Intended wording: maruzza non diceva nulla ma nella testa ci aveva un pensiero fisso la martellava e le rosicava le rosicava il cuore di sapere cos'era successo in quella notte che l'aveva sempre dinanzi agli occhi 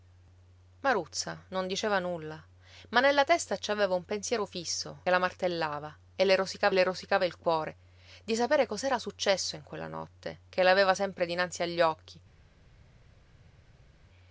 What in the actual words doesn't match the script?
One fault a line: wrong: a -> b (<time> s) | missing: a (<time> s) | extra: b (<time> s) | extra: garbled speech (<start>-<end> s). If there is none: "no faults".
no faults